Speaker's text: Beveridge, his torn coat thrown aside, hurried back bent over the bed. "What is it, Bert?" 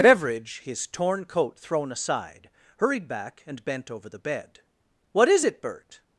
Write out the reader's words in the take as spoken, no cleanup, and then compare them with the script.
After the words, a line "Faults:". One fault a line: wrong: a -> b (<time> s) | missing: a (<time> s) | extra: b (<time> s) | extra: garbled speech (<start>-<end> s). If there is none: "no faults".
Beveridge, his torn coat thrown aside, hurried back and bent over the bed. "What is it, Bert?"
Faults:
extra: and (3.5 s)